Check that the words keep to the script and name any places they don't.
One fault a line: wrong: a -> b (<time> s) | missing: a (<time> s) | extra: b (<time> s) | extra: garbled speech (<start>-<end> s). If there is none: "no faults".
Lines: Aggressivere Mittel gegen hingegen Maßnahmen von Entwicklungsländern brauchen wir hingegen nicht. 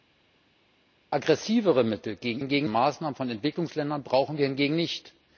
no faults